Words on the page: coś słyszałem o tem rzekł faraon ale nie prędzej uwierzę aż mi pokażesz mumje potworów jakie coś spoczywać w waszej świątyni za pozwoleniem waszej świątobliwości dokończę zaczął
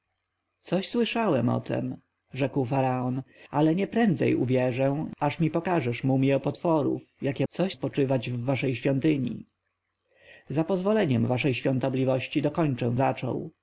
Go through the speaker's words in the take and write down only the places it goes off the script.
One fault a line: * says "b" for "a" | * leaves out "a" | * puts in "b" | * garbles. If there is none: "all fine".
all fine